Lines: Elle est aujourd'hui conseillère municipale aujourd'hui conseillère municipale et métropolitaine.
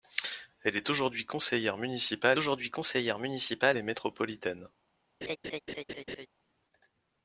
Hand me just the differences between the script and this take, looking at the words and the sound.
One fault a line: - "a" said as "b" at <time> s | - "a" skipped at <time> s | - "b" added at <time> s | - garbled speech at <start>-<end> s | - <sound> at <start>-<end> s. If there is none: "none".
- laugh at 5.2-6.3 s